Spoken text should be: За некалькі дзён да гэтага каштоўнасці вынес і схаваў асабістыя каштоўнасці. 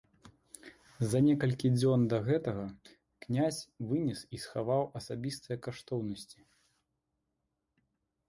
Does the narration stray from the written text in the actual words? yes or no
yes